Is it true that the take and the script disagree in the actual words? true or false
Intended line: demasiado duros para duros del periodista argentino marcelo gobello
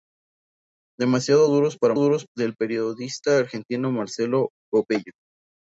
false